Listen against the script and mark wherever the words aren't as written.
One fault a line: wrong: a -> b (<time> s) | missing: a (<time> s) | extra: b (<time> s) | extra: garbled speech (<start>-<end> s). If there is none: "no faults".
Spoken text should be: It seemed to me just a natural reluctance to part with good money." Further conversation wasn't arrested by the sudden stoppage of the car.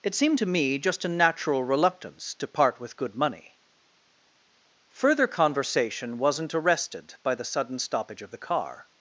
no faults